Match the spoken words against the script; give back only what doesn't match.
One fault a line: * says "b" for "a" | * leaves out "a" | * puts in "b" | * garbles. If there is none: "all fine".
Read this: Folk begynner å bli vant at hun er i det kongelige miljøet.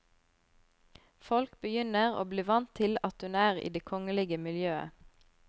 * puts in "til"